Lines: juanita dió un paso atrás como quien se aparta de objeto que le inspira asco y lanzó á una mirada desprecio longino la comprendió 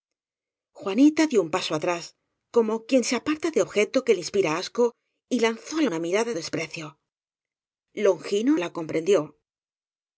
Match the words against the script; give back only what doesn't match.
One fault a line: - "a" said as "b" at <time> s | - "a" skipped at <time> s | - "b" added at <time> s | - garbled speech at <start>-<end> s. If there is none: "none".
none